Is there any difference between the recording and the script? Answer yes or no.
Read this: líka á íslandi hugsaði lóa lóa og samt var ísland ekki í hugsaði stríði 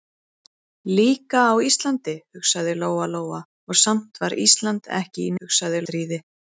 no